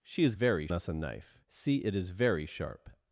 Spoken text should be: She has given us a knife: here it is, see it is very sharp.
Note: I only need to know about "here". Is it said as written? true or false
false